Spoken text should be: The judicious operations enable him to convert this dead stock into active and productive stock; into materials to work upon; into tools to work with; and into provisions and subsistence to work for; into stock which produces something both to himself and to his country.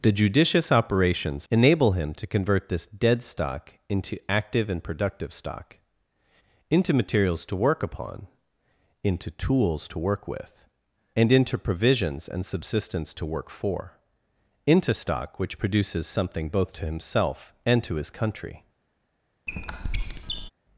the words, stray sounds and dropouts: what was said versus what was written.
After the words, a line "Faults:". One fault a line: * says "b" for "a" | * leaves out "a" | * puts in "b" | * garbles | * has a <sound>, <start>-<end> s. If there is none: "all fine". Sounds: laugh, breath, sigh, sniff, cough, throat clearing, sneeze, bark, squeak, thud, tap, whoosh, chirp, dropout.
The judicious operations enable him to convert this dead stock into active and productive stock; into materials to work upon; into tools to work with; and into provisions and subsistence to work for; into stock which produces something both to himself and to his country.
Faults:
* has a squeak, 19.5-20.5 s